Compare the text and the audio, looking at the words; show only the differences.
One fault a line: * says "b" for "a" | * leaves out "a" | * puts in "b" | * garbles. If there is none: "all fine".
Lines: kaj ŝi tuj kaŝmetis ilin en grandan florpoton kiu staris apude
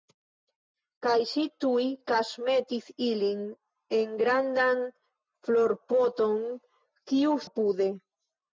* leaves out "staris"